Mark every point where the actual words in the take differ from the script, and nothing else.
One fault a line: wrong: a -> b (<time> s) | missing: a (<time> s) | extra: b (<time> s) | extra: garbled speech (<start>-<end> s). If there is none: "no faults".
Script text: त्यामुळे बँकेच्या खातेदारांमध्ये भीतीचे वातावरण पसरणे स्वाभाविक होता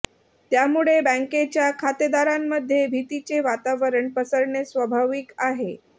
wrong: होता -> आहे (5.4 s)